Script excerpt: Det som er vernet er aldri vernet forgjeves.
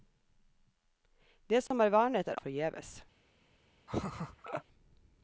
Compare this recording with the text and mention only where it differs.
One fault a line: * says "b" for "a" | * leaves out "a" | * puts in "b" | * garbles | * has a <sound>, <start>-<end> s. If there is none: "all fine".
* has a dropout, 1.7-1.7 s
* leaves out "aldri vernet"
* has a laugh, 3.9-4.6 s